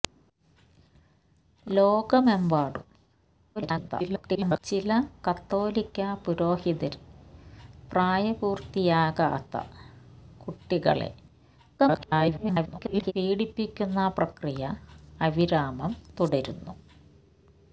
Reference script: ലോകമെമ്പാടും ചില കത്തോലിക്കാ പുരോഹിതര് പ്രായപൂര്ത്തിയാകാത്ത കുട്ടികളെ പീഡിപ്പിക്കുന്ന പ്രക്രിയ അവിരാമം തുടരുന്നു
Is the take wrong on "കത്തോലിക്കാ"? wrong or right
right